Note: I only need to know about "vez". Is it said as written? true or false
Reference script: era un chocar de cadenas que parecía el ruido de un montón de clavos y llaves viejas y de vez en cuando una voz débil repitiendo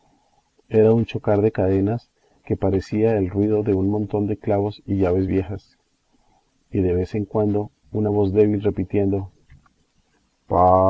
true